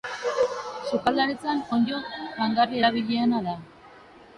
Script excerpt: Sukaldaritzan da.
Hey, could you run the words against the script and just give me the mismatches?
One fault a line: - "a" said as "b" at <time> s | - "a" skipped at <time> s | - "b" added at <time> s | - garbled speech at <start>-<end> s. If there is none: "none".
- "onddo jangarri erabiliena" added at 1.8 s